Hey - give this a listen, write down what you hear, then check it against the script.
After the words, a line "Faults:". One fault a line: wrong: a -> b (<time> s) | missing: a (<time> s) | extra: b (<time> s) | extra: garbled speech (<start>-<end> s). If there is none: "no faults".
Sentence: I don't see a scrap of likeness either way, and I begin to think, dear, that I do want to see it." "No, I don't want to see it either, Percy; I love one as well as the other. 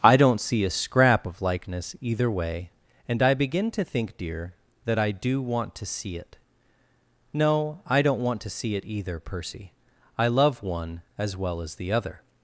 I don't see a scrap of likeness either way, and I begin to think, dear, that I do want to see it." "No, I don't want to see it either, Percy; I love one as well as the other.
Faults:
no faults